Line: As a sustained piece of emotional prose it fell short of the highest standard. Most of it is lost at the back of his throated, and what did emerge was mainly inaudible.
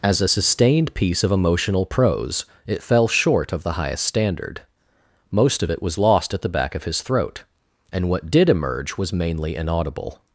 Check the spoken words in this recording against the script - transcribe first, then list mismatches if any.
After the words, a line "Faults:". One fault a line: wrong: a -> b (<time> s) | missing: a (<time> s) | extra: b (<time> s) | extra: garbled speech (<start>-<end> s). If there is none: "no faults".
As a sustained piece of emotional prose it fell short of the highest standard. Most of it was lost at the back of his throat, and what did emerge was mainly inaudible.
Faults:
wrong: is -> was (5.8 s)
wrong: throated -> throat (7.0 s)